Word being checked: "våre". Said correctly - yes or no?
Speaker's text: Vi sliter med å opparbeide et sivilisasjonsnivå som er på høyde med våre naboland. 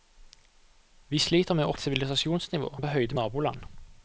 no